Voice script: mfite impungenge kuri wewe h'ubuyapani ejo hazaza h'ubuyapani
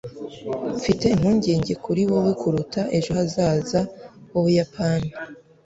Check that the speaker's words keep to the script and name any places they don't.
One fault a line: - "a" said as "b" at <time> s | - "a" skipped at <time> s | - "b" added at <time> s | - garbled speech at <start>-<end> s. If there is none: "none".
- "h'ubuyapani" said as "kuruta" at 2.4 s